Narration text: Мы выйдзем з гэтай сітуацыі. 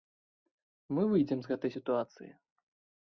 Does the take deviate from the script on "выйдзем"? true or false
false